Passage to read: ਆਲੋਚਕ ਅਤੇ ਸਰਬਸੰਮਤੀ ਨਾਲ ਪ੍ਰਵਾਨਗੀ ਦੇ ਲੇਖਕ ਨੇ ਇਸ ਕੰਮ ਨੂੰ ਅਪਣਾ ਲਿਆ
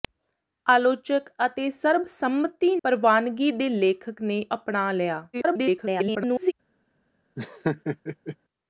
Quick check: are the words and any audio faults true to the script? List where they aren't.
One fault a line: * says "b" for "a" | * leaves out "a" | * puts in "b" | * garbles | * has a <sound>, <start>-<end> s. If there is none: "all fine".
* leaves out "ਨਾਲ"
* leaves out "ਇਸ ਕੰਮ ਨੂੰ"
* garbles
* has a laugh, 7.4-8.4 s